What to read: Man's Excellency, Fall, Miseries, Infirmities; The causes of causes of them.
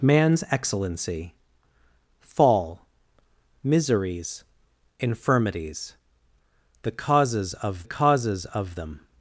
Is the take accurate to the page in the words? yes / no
yes